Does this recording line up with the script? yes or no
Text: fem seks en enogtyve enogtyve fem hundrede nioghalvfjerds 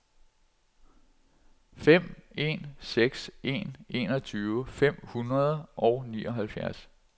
no